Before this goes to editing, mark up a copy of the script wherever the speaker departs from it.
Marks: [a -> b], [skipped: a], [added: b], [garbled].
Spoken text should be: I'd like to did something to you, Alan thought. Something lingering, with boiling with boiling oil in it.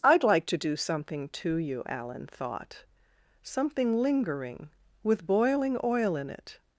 I'd like to [did -> do] something to you, Alan thought. Something lingering, with boiling [skipped: with boiling] oil in it.